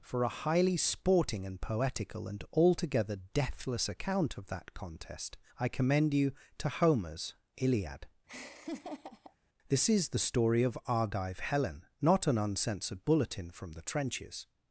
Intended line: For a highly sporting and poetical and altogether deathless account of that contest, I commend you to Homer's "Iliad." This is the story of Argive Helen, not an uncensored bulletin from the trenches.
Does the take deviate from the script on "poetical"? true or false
false